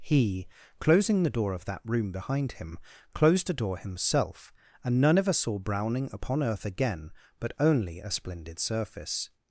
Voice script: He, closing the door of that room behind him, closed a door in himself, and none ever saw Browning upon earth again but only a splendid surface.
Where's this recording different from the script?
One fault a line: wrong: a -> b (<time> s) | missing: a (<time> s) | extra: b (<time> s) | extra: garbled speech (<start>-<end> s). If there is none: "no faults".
missing: in (3.8 s)